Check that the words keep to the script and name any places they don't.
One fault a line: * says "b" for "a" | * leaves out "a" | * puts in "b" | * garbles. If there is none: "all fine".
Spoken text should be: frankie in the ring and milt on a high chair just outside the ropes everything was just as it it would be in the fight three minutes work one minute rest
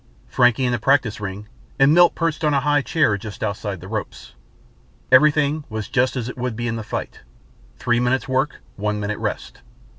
* puts in "practice"
* puts in "perched"
* leaves out "it"